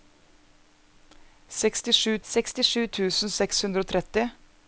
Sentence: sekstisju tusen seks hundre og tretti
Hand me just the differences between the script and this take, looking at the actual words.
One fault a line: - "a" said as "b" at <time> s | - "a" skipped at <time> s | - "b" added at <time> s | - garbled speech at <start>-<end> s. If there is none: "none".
- "sekstisju" added at 2.3 s